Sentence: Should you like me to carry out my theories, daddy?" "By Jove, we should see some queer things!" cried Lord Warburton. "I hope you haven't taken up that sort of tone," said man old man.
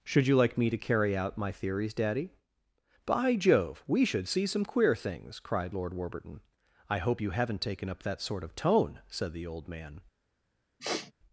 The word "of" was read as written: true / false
true